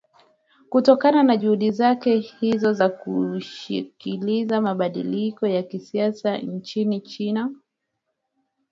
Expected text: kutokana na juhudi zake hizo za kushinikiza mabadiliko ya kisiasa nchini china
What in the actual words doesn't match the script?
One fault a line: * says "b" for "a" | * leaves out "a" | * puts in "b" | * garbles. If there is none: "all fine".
all fine